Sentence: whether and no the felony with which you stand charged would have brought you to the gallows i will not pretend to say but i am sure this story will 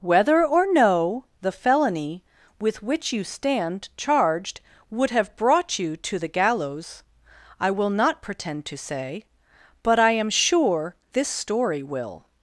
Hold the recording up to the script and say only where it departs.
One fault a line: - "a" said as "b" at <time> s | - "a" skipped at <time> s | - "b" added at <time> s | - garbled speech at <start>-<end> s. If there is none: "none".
- "and" said as "or" at 0.4 s